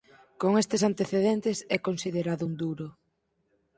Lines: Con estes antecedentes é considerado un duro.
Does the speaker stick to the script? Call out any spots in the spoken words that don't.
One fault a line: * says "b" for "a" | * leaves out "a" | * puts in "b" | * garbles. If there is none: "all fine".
all fine